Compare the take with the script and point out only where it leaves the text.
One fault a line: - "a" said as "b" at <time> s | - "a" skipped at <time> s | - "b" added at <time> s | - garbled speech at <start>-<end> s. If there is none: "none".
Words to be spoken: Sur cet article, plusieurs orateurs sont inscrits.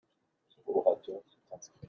- "cet article plusieurs" skipped at 0.7 s